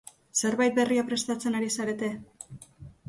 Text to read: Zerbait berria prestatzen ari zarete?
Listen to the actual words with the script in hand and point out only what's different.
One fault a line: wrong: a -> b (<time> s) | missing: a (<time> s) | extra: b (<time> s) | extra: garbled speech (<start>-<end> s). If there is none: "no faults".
no faults